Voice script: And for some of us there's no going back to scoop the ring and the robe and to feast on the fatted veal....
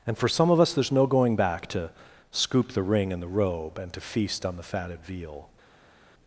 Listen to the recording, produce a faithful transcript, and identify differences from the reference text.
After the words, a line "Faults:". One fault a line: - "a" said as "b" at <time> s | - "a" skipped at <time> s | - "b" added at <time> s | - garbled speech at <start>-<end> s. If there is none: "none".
And for some of us there's no going back to scoop the ring and the robe and to feast on the fatted veal....
Faults:
none